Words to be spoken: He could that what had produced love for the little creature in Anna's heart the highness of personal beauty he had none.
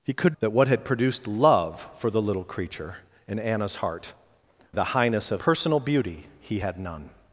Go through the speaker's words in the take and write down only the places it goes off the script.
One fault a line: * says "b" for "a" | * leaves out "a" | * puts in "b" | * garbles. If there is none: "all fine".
all fine